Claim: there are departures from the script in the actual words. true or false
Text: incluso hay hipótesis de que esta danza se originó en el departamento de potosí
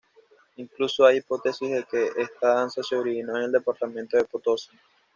false